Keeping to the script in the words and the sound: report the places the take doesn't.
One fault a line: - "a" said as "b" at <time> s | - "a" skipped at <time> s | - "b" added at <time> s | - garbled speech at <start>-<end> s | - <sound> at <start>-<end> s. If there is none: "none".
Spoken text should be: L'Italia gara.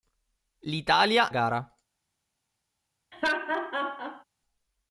- laugh at 3.1-4.2 s